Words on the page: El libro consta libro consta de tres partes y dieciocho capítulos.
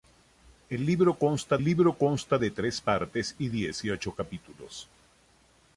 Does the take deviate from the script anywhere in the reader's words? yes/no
no